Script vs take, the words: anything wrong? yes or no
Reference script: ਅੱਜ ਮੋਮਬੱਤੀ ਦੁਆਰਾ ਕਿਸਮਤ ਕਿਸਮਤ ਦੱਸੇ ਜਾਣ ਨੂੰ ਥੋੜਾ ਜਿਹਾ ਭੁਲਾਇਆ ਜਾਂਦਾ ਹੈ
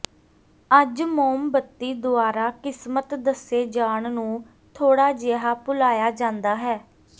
yes